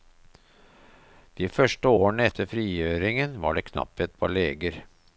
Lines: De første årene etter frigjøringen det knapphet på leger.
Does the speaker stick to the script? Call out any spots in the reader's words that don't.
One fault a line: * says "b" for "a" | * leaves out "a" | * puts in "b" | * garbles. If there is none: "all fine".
* puts in "var"